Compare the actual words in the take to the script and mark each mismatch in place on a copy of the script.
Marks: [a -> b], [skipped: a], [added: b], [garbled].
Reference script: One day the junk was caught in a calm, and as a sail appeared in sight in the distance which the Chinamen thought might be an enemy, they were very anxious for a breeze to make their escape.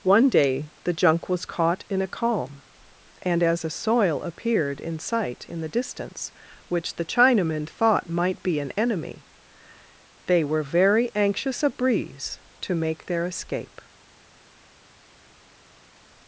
One day the junk was caught in a calm, and as a [sail -> soil] appeared in sight in the distance which the Chinamen thought might be an enemy, they were very anxious [skipped: for] a breeze to make their escape.